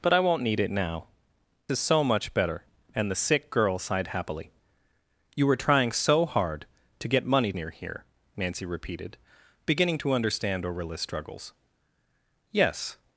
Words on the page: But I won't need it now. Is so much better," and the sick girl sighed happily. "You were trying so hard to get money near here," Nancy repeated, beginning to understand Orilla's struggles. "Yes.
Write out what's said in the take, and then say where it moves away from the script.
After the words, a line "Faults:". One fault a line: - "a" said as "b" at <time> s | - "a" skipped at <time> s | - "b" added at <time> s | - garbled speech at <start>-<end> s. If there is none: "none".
But I won't need it now. Is so much better," and the sick girl sighed happily. "You were trying so hard to get money near here," Nancy repeated, beginning to understand Orilla's struggles. "Yes.
Faults:
none